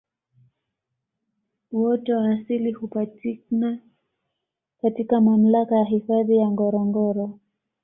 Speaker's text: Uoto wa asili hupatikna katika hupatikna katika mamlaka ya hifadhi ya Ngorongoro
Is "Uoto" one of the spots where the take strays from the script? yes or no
no